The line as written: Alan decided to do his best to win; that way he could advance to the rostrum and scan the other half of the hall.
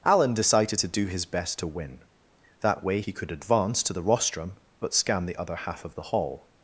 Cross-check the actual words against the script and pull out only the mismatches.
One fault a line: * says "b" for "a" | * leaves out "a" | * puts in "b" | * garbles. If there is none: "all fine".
* says "but" for "and"